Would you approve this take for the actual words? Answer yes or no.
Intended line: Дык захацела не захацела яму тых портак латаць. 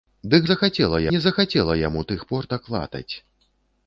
yes